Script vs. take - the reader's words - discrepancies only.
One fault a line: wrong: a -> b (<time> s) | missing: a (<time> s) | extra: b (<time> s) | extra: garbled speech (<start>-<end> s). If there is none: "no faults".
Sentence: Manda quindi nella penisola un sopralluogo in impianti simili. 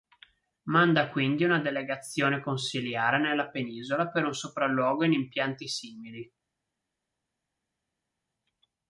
extra: una delegazione consiliare (1.4 s)
extra: per (4.1 s)